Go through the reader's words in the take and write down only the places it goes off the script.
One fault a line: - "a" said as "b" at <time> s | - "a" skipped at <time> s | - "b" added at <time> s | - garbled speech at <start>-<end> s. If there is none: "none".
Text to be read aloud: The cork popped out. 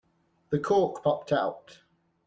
none